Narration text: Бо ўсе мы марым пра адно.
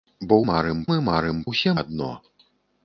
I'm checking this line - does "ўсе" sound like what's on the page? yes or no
no